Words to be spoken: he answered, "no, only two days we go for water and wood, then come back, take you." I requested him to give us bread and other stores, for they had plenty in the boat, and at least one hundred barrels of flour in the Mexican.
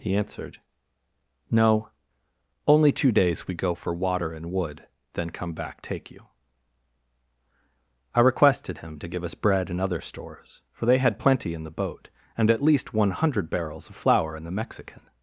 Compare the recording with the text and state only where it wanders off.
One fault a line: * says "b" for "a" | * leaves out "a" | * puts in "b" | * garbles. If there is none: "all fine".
all fine